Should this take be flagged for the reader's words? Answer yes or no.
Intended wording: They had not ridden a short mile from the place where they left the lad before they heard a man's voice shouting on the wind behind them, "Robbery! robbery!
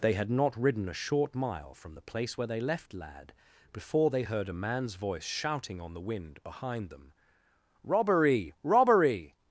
yes